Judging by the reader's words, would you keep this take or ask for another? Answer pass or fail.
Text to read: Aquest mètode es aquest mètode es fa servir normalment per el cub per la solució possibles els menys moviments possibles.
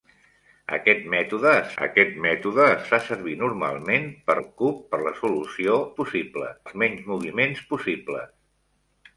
pass